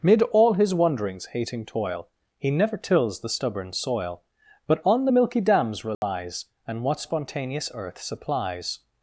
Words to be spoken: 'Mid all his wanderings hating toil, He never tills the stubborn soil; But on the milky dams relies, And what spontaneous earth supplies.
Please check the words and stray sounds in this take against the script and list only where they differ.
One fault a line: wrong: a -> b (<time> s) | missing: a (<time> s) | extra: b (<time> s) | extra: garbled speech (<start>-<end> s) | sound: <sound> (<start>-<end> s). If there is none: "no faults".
sound: dropout (5.9-6.0 s)